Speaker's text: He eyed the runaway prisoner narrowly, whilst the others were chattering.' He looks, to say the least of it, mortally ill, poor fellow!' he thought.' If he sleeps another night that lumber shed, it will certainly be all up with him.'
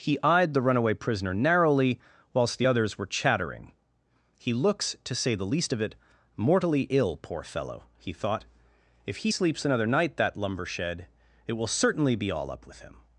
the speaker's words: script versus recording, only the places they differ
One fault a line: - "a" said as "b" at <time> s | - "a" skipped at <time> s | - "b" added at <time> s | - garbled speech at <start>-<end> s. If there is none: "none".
none